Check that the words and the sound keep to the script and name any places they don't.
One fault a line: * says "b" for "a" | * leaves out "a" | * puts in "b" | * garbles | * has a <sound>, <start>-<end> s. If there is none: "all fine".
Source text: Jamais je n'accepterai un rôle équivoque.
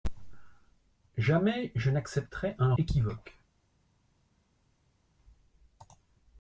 * leaves out "rôle"